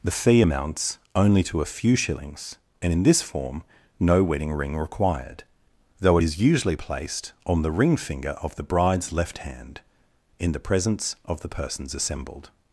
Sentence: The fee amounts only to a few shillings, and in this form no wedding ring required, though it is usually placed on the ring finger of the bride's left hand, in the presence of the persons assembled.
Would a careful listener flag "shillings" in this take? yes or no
no